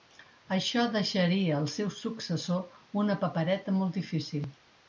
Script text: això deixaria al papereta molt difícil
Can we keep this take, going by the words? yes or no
no